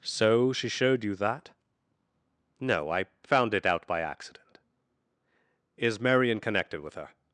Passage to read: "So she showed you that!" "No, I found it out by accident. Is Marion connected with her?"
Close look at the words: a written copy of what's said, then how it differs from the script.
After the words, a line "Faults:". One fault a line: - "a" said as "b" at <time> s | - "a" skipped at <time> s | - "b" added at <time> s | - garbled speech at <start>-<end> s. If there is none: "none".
"So she showed you that!" "No, I found it out by accident. Is Marion connected with her?"
Faults:
none